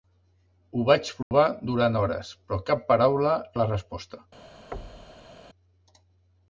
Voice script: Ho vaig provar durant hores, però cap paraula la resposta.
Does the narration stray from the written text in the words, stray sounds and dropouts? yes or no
yes